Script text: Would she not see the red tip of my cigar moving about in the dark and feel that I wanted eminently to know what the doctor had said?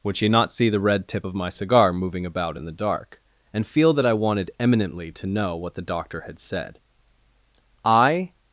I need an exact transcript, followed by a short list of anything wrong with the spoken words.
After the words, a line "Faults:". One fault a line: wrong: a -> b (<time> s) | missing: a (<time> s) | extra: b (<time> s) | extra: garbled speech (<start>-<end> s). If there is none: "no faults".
Would she not see the red tip of my cigar moving about in the dark and feel that I wanted eminently to know what the doctor had said? I
Faults:
extra: I (7.8 s)